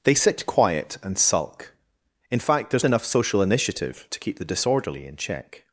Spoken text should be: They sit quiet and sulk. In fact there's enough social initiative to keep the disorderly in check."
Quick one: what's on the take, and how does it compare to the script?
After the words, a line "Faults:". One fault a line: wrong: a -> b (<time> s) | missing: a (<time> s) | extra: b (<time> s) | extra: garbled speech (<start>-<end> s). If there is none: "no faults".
They sit quiet and sulk. In fact there's enough social initiative to keep the disorderly in check."
Faults:
no faults